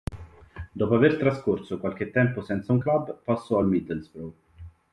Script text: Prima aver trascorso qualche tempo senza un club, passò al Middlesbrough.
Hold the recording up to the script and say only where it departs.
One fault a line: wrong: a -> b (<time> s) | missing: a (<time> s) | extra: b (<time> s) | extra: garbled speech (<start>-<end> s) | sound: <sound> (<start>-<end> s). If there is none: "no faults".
wrong: Prima -> Dopo (0.7 s)